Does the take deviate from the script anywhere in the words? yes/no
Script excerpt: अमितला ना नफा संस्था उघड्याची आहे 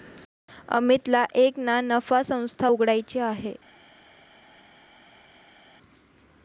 yes